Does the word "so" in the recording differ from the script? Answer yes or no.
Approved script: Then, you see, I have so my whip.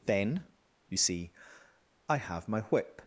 yes